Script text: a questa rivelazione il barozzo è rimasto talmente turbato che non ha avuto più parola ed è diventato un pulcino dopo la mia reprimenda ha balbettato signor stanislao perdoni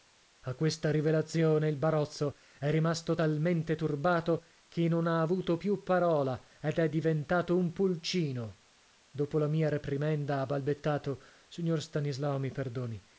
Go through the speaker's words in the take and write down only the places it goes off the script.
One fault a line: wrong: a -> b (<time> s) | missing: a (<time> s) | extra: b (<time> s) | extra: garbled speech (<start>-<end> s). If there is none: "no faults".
extra: mi (12.4 s)